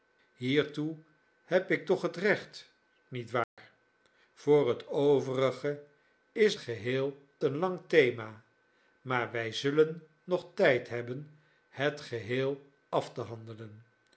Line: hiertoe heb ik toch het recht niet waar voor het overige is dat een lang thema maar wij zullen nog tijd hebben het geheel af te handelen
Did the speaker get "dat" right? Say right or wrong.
wrong